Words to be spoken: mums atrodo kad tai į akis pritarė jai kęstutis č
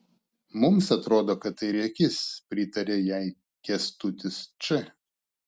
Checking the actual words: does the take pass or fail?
pass